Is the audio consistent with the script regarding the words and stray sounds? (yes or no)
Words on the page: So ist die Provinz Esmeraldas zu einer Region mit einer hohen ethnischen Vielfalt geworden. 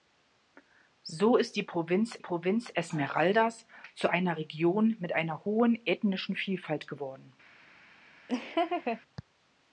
no